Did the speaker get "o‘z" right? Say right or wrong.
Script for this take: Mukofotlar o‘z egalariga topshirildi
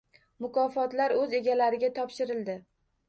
right